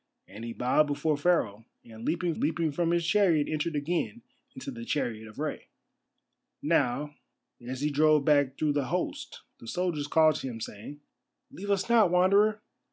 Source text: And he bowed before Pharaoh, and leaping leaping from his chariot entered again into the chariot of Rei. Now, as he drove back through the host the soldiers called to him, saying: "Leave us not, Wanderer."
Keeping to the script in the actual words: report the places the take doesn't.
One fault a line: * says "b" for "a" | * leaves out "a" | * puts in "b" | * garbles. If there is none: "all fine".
all fine